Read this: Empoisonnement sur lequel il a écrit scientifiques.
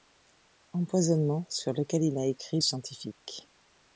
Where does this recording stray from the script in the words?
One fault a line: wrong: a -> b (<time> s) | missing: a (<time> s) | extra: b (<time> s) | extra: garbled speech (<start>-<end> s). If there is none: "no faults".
no faults